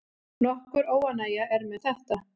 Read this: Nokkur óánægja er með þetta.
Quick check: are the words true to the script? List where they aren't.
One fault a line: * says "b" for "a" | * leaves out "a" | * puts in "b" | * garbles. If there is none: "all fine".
all fine